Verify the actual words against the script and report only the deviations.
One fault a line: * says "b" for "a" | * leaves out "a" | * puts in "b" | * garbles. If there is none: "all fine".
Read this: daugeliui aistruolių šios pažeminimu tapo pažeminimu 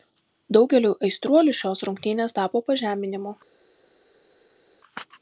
* says "rungtynės" for "pažeminimu"